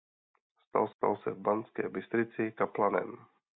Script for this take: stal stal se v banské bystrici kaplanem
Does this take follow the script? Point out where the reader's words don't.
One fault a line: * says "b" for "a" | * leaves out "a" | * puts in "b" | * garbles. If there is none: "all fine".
all fine